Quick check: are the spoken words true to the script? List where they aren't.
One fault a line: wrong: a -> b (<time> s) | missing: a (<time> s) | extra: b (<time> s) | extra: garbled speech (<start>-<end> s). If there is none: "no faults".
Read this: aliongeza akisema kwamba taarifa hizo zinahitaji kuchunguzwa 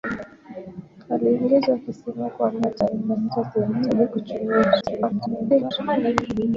extra: garbled speech (4.8-5.7 s)